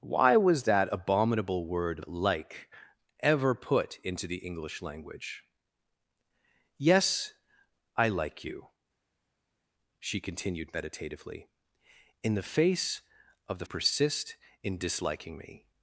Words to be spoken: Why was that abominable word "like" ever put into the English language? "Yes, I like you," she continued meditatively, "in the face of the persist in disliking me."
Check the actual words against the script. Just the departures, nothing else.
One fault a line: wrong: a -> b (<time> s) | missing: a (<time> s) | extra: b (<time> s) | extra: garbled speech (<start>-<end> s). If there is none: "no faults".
no faults